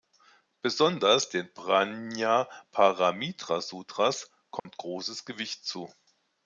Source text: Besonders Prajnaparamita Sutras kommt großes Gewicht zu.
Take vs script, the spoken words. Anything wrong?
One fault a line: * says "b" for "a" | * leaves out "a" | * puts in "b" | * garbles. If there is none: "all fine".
* puts in "den"